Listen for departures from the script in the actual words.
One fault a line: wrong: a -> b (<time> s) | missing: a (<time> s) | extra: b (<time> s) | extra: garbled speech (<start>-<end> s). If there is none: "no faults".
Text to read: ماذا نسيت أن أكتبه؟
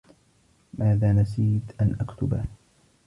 no faults